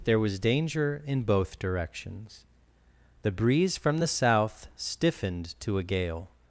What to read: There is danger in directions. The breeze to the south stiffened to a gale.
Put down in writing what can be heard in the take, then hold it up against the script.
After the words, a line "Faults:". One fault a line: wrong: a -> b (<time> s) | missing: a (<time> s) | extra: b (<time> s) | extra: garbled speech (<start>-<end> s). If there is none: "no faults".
There was danger in both directions. The breeze from the south stiffened to a gale.
Faults:
wrong: is -> was (0.2 s)
extra: both (1.2 s)
wrong: to -> from (3.8 s)